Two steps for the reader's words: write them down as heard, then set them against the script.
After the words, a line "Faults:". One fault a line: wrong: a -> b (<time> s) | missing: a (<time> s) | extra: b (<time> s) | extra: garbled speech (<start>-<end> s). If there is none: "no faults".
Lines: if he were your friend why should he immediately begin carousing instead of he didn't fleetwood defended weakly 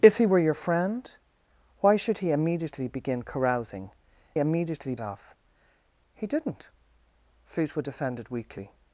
if he were your friend why should he immediately begin carousing immediately of he didn't fleetwood defended weakly
Faults:
wrong: instead -> immediately (4.4 s)